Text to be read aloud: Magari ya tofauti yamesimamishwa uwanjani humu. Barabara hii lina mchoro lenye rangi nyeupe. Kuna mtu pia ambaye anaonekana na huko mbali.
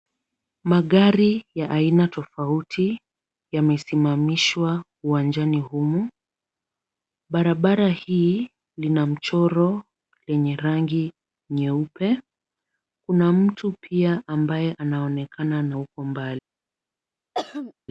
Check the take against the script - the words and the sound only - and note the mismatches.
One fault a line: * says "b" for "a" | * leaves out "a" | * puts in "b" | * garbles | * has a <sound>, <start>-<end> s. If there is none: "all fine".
* puts in "aina"
* has a throat clearing, 17.3-17.7 s